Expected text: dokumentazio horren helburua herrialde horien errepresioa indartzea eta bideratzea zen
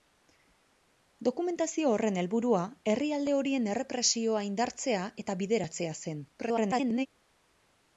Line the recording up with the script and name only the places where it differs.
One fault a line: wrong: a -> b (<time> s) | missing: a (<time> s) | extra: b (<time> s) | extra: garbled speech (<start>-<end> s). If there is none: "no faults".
extra: garbled speech (6.4-7.1 s)